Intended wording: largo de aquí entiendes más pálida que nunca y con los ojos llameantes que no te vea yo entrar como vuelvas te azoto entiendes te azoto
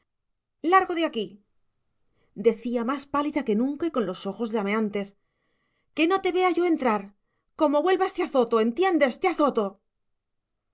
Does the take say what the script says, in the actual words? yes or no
no